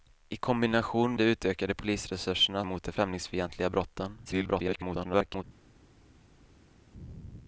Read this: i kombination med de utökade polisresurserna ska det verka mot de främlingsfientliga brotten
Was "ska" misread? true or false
true